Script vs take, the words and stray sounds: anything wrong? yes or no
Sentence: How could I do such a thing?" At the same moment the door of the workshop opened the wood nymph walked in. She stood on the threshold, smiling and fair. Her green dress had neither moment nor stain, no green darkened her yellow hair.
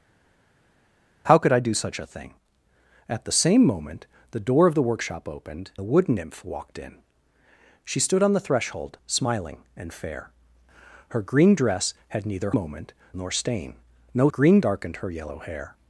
no